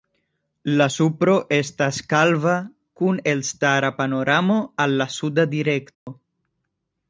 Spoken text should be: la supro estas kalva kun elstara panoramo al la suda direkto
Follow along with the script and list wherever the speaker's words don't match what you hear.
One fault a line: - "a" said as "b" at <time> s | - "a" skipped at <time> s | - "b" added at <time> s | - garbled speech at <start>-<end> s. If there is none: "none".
none